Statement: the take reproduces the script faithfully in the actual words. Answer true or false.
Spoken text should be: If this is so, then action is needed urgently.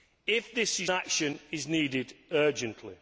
false